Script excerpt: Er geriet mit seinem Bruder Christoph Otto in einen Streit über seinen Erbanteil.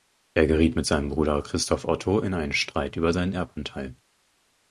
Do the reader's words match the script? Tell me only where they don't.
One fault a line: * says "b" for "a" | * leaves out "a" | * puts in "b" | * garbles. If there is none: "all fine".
all fine